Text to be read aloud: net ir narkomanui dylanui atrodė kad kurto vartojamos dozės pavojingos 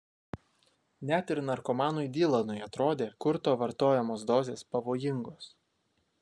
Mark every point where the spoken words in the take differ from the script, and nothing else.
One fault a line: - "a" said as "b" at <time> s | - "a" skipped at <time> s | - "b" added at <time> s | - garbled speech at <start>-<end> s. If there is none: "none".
- "kad" skipped at 3.1 s